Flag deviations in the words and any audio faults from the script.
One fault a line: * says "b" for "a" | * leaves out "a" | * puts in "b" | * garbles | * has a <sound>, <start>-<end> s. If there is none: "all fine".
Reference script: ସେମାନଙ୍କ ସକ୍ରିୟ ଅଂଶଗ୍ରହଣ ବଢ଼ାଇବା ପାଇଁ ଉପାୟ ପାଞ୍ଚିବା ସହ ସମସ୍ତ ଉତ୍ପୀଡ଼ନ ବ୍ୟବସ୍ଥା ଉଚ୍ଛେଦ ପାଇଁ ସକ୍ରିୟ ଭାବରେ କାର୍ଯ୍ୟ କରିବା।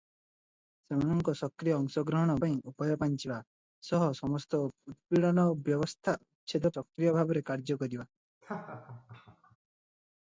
* leaves out "ବଢ଼ାଇବା"
* leaves out "ପାଇଁ"
* has a laugh, 8.4-9.6 s